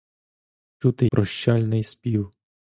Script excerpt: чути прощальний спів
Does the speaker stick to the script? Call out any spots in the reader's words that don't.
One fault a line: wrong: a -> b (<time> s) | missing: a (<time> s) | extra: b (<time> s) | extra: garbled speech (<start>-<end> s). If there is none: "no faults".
no faults